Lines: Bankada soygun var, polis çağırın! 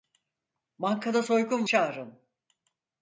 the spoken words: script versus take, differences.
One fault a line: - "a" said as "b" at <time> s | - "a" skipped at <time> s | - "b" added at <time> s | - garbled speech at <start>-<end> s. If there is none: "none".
- "var polis" skipped at 1.7 s